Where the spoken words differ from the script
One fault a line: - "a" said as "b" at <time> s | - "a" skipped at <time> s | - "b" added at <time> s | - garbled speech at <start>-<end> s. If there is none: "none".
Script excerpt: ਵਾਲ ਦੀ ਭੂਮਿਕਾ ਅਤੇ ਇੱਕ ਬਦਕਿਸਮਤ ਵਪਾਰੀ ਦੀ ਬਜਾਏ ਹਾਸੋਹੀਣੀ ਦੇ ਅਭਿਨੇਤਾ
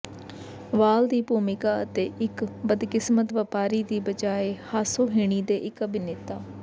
- "ਇੱਕ" added at 5.6 s